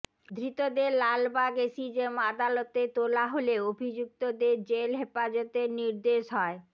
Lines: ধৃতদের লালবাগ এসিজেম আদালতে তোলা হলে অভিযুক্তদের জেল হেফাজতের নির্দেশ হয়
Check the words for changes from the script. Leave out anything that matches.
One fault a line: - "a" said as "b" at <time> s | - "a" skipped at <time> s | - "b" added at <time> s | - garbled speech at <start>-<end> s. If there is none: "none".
none